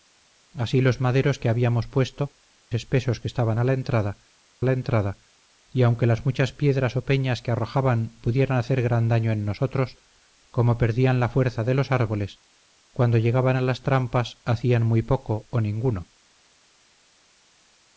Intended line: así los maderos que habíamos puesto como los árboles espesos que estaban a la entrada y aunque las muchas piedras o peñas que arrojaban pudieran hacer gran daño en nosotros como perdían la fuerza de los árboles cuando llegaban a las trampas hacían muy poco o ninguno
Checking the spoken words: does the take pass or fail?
fail